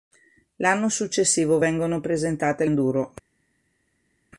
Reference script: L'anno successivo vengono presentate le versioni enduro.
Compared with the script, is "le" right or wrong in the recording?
wrong